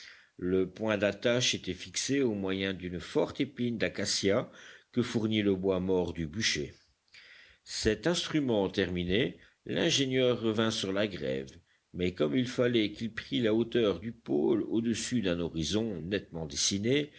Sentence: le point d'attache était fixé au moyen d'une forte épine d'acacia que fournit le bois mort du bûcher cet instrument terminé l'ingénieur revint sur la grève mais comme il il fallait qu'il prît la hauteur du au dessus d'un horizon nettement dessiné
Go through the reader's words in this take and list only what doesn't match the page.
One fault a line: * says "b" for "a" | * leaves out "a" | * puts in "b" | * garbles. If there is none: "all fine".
* leaves out "il"
* puts in "pôle"